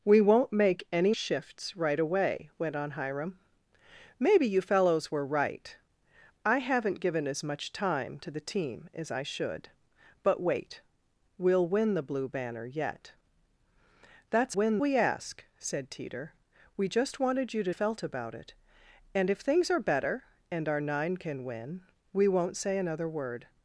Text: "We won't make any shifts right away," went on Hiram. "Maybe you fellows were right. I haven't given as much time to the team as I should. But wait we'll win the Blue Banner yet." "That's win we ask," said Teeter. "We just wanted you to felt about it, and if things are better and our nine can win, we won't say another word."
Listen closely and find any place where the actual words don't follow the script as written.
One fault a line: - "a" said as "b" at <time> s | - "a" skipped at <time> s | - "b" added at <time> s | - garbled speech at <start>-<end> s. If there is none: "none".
none